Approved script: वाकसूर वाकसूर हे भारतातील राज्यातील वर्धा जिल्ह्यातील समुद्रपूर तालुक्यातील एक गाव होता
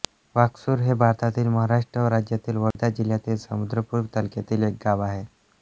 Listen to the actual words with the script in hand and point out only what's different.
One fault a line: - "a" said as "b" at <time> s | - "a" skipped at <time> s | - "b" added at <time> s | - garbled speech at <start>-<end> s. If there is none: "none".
- "वाकसूर" skipped at 0.8 s
- "महाराष्ट्र" added at 1.5 s
- "होता" said as "आहे" at 5.0 s